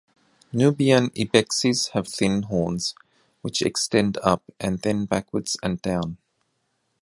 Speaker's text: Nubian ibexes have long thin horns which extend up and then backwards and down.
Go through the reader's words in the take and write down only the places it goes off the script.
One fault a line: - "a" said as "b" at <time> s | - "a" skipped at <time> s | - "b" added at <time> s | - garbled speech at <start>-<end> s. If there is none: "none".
- "long" skipped at 2.1 s